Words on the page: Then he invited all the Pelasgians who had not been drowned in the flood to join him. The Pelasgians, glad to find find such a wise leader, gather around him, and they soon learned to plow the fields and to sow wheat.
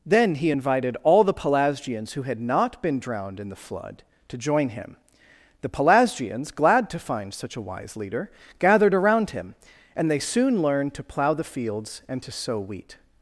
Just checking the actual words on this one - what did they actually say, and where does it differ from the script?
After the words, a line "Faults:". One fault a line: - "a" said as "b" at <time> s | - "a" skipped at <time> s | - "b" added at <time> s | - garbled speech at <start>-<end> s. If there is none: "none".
Then he invited all the Pelasgians who had not been drowned in the flood to join him. The Pelasgians, glad to find such a wise leader, gathered around him, and they soon learned to plow the fields and to sow wheat.
Faults:
- "find" skipped at 7.3 s
- "gather" said as "gathered" at 8.6 s